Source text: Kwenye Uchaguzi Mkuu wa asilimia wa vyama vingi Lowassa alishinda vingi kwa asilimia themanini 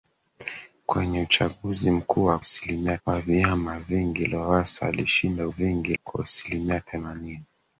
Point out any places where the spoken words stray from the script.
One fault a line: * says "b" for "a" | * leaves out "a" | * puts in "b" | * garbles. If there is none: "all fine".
all fine